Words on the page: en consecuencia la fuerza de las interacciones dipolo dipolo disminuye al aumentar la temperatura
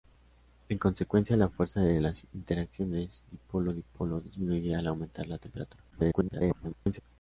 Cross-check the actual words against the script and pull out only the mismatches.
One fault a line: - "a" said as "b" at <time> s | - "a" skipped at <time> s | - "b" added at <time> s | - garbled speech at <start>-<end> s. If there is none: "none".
- garbled speech at 5.9-7.0 s